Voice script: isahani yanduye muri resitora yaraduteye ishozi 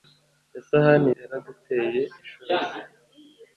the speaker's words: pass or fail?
fail